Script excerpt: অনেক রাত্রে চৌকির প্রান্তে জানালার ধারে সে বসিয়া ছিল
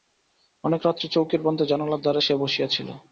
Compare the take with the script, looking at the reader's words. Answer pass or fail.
pass